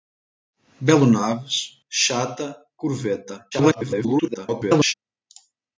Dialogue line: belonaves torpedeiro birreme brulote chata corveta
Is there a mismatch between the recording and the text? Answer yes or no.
yes